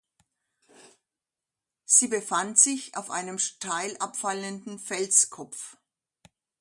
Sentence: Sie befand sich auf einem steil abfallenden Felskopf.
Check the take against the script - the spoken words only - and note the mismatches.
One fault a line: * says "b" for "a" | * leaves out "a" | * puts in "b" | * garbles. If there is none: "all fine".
all fine